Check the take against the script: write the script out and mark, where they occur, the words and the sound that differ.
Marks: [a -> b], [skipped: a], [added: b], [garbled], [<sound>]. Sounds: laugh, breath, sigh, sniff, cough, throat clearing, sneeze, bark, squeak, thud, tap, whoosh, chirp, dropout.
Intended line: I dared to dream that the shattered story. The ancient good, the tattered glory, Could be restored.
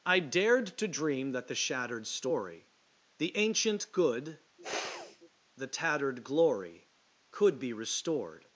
I dared to dream that the shattered story. The ancient good, [sniff] the tattered glory, Could be restored.